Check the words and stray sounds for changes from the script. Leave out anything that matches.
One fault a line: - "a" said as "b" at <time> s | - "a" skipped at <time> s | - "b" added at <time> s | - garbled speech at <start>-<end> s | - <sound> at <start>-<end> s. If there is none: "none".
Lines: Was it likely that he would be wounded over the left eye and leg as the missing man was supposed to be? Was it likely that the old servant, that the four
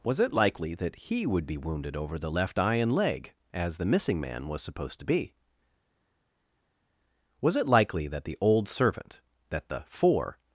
none